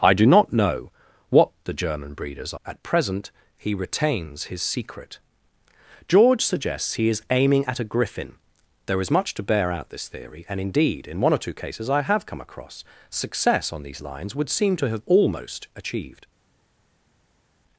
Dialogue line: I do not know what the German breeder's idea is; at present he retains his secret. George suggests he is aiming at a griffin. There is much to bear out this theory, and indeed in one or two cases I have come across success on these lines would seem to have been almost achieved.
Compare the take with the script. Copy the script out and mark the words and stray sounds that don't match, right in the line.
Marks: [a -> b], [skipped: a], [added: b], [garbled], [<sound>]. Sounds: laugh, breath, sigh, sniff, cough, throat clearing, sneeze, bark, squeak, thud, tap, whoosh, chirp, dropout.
I do not know what the German breeder's [skipped: idea is;] at present he retains his secret. George suggests he is aiming at a griffin. There is much to bear out this theory, and indeed in one or two cases I have come across success on these lines would seem to have [skipped: been] almost achieved.